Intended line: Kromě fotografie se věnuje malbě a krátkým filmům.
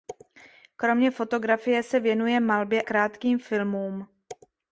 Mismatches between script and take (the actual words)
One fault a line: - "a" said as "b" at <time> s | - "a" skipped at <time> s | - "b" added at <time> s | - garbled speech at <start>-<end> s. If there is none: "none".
- "a" skipped at 2.8 s